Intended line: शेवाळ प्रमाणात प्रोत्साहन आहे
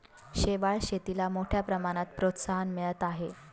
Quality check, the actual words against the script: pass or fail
fail